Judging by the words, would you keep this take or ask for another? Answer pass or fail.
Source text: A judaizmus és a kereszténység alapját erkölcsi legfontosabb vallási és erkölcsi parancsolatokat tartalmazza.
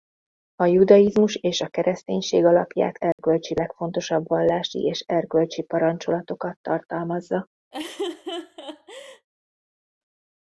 pass